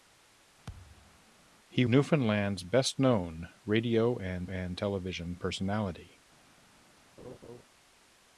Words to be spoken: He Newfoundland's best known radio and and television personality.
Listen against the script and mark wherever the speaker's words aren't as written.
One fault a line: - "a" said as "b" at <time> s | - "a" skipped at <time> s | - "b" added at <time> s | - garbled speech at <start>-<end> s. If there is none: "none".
none